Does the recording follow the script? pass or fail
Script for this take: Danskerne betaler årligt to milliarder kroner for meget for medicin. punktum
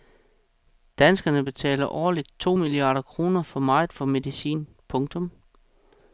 pass